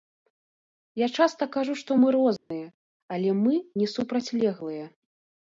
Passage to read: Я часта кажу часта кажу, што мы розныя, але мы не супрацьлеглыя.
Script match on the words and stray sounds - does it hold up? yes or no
no